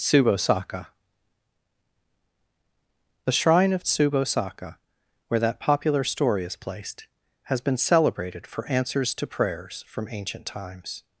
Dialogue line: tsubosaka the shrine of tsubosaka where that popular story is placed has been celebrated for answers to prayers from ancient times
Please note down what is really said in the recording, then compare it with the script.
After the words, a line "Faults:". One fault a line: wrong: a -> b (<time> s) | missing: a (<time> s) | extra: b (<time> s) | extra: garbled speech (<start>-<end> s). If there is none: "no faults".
tsubosaka the shrine of tsubosaka where that popular story is placed has been celebrated for answers to prayers from ancient times
Faults:
no faults